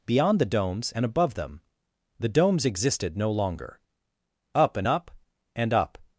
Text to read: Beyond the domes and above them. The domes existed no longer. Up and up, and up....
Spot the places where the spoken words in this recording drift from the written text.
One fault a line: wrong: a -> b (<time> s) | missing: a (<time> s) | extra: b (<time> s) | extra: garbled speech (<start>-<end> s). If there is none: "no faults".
no faults